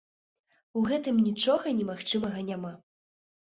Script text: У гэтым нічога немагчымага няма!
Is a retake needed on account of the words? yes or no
no